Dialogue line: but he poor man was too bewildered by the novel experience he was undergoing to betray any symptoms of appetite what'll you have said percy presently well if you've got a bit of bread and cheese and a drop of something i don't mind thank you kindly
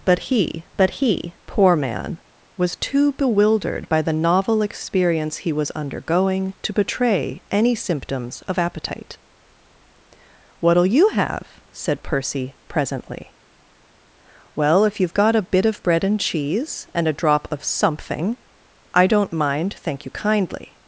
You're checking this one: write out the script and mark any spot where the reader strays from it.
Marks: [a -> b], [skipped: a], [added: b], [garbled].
but he [added: but he] poor man was too bewildered by the novel experience he was undergoing to betray any symptoms of appetite what'll you have said percy presently well if you've got a bit of bread and cheese and a drop of something i don't mind thank you kindly